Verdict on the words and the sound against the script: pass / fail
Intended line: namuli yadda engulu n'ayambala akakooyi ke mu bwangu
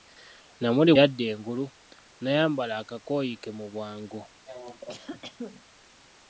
fail